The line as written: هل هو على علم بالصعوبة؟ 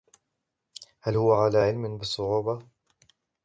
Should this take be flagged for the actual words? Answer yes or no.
no